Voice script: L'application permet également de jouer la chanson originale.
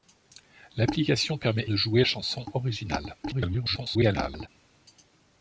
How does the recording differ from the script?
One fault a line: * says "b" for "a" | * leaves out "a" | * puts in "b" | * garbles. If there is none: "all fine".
* leaves out "également"
* leaves out "la"
* garbles